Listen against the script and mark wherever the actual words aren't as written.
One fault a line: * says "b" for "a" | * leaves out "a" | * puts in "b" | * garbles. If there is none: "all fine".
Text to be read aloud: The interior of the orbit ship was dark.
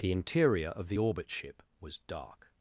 all fine